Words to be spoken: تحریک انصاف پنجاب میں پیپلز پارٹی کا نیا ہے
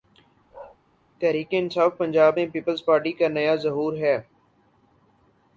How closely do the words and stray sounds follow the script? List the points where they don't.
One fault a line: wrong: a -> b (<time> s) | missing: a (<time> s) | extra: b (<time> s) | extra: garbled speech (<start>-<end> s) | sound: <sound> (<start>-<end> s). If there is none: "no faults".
sound: bark (0.5-0.8 s)
extra: ظہور (3.5 s)